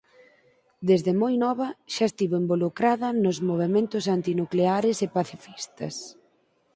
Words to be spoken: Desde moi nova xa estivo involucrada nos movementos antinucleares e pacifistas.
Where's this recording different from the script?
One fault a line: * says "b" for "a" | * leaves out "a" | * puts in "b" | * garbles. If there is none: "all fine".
all fine